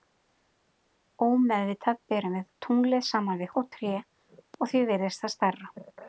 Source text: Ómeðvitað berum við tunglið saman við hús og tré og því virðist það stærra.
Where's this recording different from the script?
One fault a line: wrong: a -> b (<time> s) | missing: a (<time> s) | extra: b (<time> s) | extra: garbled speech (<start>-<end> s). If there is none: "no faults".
missing: hús (3.5 s)